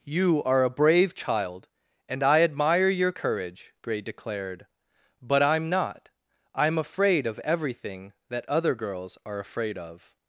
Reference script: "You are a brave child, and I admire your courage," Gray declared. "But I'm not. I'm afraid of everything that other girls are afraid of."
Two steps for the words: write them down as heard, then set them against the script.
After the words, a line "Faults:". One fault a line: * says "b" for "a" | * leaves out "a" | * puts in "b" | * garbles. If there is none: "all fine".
"You are a brave child, and I admire your courage," Gray declared. "But I'm not. I'm afraid of everything that other girls are afraid of."
Faults:
all fine